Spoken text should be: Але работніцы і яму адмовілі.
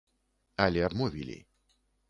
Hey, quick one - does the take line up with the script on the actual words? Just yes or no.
no